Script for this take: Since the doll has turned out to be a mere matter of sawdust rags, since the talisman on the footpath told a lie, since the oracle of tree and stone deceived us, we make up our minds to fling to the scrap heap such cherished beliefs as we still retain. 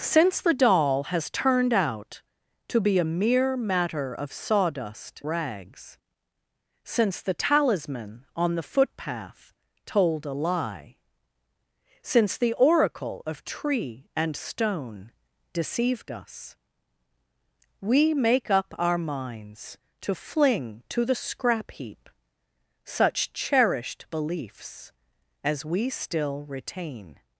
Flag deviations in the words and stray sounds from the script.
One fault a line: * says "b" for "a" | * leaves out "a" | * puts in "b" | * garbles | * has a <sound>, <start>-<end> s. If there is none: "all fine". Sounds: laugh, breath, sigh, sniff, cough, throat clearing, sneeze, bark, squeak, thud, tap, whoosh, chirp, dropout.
all fine